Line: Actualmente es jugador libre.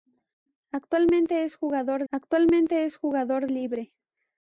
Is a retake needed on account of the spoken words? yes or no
yes